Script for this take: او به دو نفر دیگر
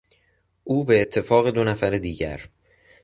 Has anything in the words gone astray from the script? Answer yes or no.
yes